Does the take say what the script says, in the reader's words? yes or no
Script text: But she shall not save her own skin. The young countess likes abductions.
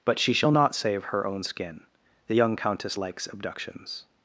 yes